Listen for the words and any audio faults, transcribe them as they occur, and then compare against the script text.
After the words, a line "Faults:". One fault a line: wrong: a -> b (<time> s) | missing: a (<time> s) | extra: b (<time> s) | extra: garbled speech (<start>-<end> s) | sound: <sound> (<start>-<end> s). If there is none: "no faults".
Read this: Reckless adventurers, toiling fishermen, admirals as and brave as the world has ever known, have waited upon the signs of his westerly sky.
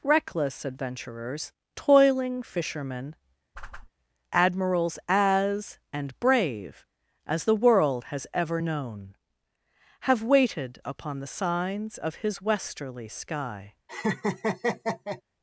Reckless adventurers, toiling fishermen, admirals as and brave as the world has ever known, have waited upon the signs of his westerly sky.
Faults:
sound: whoosh (3.5-3.9 s)
sound: laugh (13.9-15.2 s)